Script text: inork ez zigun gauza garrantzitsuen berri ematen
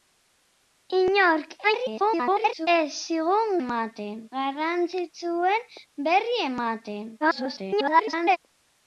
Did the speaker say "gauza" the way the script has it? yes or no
no